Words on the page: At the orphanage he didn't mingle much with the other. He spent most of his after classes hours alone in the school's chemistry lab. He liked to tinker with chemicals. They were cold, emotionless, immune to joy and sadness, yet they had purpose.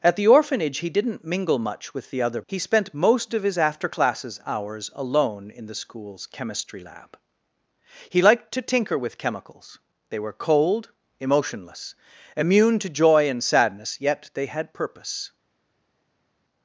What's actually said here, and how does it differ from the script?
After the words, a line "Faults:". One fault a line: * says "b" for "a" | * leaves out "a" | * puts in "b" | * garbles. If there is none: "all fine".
At the orphanage he didn't mingle much with the other. He spent most of his after classes hours alone in the school's chemistry lab. He liked to tinker with chemicals. They were cold, emotionless, immune to joy and sadness, yet they had purpose.
Faults:
all fine